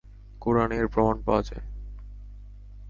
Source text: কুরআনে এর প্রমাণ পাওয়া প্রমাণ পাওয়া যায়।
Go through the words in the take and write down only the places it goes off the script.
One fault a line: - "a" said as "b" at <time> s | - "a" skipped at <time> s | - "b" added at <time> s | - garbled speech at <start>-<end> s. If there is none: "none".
- "প্রমাণ পাওয়া" skipped at 1.4 s